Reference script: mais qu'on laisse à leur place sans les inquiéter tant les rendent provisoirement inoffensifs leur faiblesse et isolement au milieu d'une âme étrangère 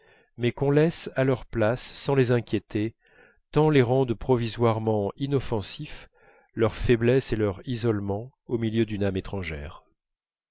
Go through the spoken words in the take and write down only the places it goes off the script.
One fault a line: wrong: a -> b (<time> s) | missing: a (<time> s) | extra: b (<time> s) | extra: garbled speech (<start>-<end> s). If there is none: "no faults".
extra: leur (7.3 s)